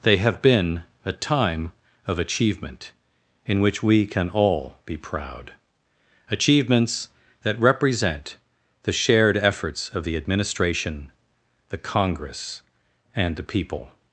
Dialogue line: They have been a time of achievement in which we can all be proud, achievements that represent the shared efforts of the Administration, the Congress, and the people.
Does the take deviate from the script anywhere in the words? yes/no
no